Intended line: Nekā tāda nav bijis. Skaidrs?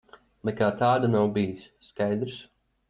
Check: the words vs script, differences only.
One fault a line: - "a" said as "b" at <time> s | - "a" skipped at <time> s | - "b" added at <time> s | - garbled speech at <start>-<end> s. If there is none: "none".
none